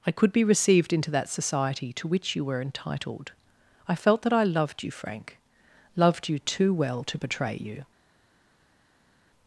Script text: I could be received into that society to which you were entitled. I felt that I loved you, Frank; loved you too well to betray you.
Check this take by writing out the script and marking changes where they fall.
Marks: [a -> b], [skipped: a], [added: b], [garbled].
I could be received into that society to which you were entitled. I felt that I loved you, Frank; loved you too well to betray you.